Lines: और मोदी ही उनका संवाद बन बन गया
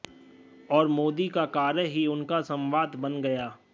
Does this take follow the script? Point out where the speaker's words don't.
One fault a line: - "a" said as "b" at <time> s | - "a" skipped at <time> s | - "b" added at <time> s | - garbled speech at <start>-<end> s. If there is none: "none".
- "का कार्य" added at 1.3 s
- "बन" skipped at 3.2 s